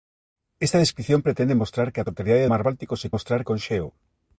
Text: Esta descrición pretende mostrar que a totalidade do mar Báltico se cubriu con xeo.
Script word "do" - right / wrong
wrong